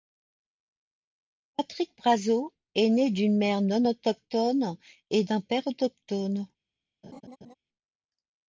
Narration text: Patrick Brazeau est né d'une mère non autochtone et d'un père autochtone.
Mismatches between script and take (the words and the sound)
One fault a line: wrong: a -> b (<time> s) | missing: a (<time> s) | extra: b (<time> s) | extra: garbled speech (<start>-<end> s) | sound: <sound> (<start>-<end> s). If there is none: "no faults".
sound: laugh (7.0-7.5 s)